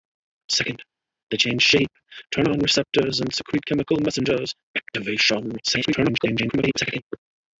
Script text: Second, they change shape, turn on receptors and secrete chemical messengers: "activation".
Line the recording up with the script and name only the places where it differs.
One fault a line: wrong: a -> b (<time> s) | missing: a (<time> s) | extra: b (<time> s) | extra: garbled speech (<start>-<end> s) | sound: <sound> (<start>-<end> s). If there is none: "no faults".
extra: garbled speech (5.6-7.0 s)